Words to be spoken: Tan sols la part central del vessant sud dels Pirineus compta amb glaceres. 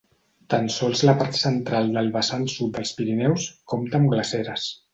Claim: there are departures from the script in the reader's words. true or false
false